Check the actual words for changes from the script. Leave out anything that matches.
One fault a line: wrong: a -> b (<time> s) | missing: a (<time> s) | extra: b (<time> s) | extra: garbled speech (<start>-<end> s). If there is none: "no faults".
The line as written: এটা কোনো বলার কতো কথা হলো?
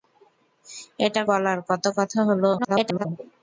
missing: কোনো (1.2 s)
extra: garbled speech (2.6-3.1 s)